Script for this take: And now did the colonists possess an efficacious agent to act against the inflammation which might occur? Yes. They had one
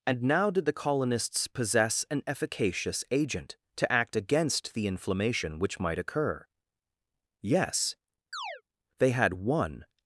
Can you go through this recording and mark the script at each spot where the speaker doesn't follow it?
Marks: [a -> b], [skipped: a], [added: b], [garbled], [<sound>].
And now did the colonists possess an efficacious agent to act against the inflammation which might occur? Yes. [chirp] They had one